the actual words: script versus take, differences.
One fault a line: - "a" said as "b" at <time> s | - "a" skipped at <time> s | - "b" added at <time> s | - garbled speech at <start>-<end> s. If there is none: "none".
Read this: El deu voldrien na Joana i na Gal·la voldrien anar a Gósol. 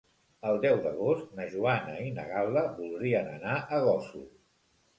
- "voldrien" said as "d'agost" at 0.8 s